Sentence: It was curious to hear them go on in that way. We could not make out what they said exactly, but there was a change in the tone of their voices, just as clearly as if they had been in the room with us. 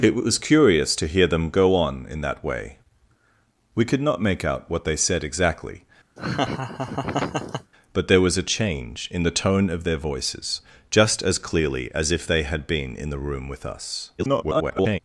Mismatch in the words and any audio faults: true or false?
true